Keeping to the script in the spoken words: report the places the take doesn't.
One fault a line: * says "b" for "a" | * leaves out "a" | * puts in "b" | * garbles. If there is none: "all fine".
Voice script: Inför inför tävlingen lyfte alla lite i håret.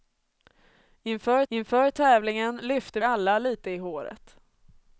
all fine